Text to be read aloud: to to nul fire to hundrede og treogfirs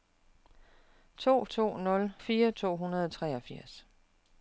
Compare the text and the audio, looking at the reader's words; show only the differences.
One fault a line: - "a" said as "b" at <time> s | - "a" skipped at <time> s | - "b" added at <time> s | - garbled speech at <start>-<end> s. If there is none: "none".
none